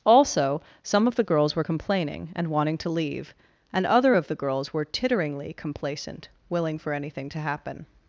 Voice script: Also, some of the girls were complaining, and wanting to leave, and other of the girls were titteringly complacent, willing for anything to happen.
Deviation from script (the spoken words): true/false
false